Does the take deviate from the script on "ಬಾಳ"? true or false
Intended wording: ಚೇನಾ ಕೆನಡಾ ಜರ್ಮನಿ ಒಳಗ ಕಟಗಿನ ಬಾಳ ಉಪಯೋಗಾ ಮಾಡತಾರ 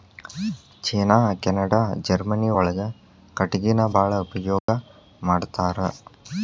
false